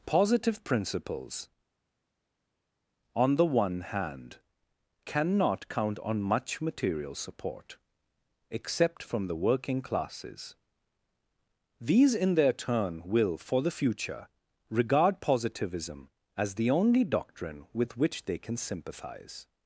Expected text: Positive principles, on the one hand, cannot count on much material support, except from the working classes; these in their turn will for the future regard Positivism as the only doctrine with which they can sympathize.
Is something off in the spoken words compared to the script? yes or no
no